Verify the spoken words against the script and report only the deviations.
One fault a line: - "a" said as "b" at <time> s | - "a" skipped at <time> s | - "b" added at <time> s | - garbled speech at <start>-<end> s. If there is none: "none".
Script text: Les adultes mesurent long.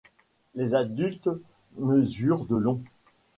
- "de" added at 2.4 s